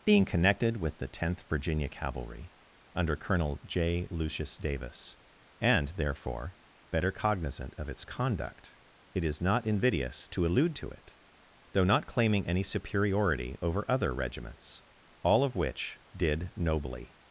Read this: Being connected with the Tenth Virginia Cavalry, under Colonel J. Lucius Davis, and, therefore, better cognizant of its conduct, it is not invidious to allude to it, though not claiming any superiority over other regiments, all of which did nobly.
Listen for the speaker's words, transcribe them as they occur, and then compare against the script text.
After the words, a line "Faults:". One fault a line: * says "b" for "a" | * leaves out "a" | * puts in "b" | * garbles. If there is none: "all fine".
Being connected with the Tenth Virginia Cavalry, under Colonel J. Lucius Davis, and, therefore, better cognizant of its conduct, it is not invidious to allude to it, though not claiming any superiority over other regiments, all of which did nobly.
Faults:
all fine